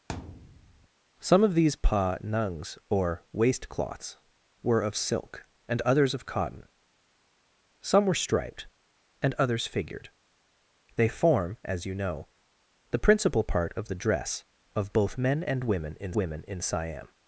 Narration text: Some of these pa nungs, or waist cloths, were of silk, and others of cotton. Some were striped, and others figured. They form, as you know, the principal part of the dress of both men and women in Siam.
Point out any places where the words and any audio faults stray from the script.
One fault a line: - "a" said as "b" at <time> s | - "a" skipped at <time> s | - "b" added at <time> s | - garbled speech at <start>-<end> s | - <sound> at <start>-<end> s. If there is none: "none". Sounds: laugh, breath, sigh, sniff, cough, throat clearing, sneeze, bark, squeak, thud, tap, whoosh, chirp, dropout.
- thud at 0.1-0.9 s
- "women in" added at 16.1 s